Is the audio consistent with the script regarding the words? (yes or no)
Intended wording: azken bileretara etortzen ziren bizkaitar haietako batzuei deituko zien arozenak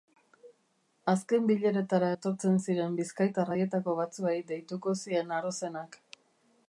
yes